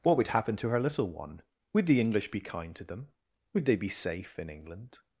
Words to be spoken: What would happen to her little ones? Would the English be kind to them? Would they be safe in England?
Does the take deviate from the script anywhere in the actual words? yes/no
yes